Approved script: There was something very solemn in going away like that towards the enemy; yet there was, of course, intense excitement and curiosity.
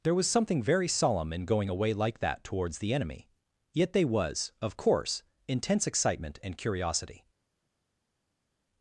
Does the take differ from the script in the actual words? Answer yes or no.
yes